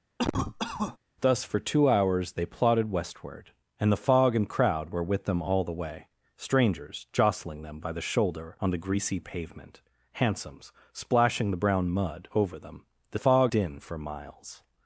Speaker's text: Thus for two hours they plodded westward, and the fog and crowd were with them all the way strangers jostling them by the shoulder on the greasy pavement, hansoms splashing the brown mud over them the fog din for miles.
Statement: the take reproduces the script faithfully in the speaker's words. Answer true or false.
true